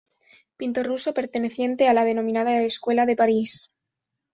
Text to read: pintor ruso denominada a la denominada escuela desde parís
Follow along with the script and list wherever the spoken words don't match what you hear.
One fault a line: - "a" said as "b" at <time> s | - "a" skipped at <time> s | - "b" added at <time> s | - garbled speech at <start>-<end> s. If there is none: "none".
- "denominada" said as "perteneciente" at 1.1 s
- "desde" said as "de" at 3.0 s